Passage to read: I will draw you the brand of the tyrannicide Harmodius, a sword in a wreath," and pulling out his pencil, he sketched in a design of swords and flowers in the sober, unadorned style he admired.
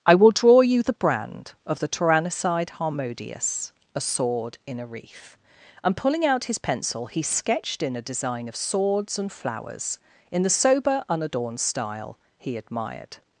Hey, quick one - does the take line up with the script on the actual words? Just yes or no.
yes